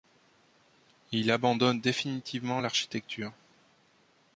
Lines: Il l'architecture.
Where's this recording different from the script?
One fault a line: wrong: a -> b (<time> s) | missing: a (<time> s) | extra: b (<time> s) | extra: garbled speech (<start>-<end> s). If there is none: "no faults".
extra: abandonne définitivement (1.3 s)